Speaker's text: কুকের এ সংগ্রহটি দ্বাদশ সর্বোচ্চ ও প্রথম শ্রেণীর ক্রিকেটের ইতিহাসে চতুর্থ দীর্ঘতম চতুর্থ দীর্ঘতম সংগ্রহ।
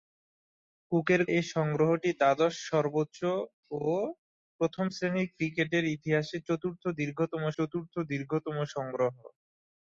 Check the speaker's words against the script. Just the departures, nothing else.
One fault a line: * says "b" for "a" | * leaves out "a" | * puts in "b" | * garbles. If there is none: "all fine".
all fine